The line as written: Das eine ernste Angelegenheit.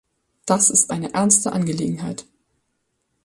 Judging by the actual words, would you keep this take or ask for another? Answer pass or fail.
fail